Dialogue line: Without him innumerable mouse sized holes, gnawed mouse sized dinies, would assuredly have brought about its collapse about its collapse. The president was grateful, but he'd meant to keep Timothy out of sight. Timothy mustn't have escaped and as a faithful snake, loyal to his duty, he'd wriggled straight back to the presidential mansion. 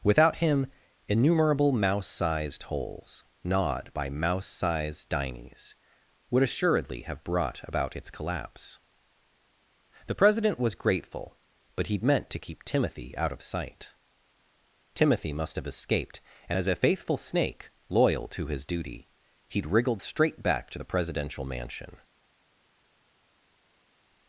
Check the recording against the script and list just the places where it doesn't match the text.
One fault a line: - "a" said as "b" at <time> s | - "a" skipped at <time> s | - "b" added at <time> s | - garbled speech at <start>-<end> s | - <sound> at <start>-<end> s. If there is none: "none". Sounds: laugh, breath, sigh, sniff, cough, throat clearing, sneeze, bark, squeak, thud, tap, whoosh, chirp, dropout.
- "by" added at 3.9 s
- "about its collapse" skipped at 8.8 s
- "mustn't" said as "must" at 15.3 s